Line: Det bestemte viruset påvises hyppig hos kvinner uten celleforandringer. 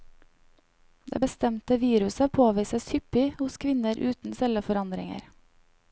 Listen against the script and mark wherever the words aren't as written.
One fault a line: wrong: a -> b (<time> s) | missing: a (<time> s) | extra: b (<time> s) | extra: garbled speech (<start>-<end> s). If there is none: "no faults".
no faults